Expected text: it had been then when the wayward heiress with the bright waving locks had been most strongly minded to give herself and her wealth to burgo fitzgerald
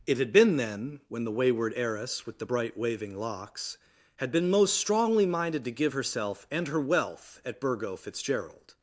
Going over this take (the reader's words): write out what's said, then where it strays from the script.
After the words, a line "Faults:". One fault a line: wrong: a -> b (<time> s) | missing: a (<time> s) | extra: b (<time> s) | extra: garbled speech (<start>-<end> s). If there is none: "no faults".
it had been then when the wayward heiress with the bright waving locks had been most strongly minded to give herself and her wealth at burgo fitzgerald
Faults:
wrong: to -> at (7.5 s)